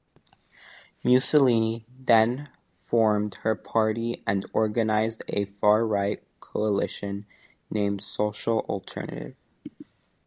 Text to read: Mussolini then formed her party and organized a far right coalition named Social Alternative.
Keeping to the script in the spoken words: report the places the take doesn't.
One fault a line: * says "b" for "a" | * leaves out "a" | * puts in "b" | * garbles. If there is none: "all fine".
all fine